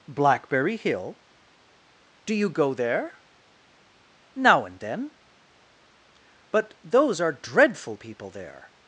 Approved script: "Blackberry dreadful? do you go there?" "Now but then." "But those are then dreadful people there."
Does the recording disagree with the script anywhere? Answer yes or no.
yes